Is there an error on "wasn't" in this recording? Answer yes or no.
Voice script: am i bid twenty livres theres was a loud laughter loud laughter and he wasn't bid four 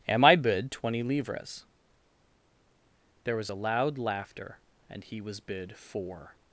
yes